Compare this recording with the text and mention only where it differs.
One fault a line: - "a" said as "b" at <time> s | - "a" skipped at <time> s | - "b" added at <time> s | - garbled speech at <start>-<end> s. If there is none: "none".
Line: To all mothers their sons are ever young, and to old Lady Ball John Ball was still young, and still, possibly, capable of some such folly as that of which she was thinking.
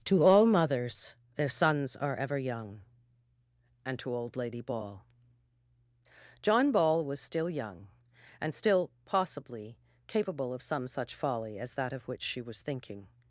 none